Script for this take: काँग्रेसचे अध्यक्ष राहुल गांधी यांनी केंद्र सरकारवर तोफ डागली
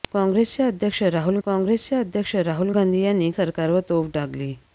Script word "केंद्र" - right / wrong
wrong